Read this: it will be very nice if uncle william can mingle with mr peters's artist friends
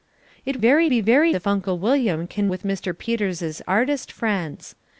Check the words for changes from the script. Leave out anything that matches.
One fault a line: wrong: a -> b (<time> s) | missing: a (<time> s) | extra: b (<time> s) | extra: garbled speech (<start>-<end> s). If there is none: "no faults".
wrong: will -> very (0.6 s)
missing: nice (1.3 s)
missing: mingle (2.5 s)